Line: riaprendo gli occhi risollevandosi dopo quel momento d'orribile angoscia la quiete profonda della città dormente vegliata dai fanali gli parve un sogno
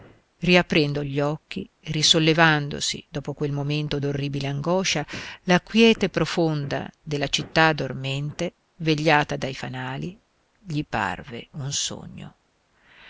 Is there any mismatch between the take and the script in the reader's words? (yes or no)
no